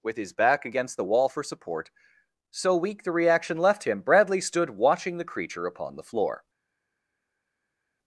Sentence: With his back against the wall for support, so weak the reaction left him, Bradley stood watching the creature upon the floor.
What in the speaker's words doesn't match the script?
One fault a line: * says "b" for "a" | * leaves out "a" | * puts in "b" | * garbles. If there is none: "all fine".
all fine